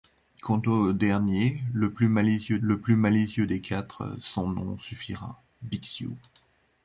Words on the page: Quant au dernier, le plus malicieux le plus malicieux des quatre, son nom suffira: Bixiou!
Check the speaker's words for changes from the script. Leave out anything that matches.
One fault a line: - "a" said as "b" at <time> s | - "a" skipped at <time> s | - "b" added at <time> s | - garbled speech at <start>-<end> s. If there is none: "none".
none